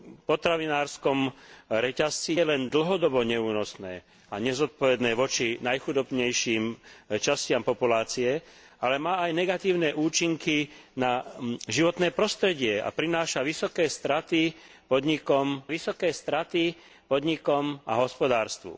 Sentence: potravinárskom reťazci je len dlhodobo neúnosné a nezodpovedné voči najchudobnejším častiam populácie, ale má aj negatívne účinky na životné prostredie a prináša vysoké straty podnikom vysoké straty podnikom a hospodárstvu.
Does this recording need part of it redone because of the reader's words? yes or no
no